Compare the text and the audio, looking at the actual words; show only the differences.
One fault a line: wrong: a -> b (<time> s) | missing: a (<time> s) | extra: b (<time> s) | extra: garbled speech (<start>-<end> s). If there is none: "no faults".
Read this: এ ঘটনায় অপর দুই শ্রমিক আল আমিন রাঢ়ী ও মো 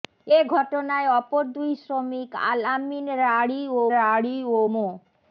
extra: রাঢ়ী ও (3.9 s)